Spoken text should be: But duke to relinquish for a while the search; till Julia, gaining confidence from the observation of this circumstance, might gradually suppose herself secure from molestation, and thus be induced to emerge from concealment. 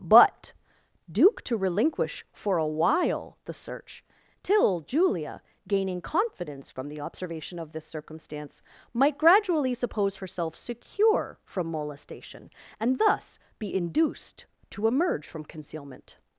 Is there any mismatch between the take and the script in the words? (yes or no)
no